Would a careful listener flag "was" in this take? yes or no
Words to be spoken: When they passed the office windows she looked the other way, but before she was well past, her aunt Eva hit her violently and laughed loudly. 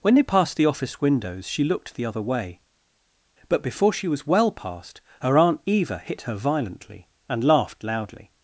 no